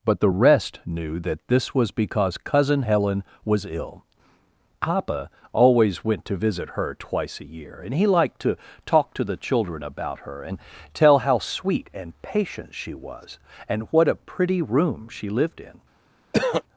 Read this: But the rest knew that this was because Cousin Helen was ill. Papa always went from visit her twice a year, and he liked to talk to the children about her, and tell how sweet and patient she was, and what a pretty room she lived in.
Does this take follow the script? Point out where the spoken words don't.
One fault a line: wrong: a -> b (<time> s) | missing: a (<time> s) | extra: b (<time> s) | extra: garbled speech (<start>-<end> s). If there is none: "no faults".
wrong: from -> to (6.3 s)